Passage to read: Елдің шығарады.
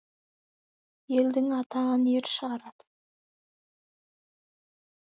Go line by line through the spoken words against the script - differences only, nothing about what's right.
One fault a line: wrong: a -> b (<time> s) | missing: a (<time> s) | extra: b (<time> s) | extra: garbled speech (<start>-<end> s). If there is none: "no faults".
extra: атағын ер (1.6 s)